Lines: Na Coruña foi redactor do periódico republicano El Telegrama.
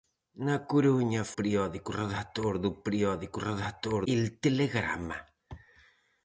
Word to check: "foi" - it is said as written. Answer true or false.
false